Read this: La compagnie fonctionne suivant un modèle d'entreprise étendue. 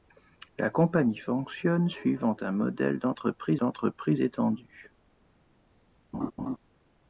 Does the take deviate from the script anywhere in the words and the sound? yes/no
yes